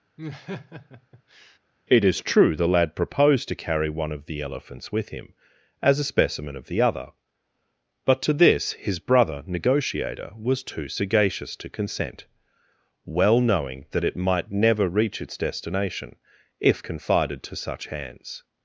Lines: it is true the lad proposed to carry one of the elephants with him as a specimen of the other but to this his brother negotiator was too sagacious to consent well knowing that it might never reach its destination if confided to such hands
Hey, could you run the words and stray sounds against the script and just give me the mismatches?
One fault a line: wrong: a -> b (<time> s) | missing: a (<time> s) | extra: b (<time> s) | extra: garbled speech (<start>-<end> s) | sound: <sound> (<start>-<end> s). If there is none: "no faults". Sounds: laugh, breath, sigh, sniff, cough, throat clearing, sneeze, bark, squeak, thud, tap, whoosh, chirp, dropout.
sound: laugh (0.2-1.6 s)